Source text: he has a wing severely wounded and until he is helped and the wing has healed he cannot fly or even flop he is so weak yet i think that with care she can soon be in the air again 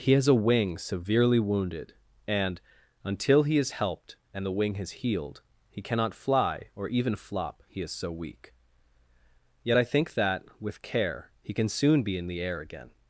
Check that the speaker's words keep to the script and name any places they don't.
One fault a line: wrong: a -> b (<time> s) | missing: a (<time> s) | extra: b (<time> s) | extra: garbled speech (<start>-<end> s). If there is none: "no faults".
wrong: she -> he (11.4 s)